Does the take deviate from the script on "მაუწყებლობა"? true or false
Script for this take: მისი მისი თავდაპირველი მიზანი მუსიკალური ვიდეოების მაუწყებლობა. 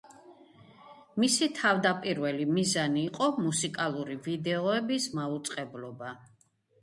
false